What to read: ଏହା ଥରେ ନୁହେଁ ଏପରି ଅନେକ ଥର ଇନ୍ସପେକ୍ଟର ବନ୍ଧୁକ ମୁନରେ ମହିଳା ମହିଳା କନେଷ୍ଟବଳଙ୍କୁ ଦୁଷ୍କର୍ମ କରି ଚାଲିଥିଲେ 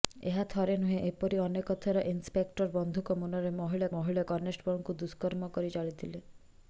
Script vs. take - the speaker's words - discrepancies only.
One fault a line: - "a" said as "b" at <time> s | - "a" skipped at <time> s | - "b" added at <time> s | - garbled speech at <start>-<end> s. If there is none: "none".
none